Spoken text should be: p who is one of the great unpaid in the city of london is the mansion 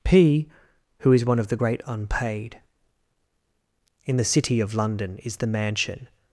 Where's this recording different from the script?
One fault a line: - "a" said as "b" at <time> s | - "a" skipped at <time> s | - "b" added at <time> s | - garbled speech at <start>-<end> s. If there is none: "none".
none